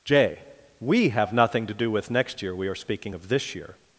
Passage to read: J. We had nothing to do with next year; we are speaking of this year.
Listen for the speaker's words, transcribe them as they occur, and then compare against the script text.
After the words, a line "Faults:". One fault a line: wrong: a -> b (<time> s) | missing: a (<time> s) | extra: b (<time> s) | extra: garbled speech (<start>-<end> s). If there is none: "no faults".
J. We have nothing to do with next year; we are speaking of this year.
Faults:
wrong: had -> have (1.1 s)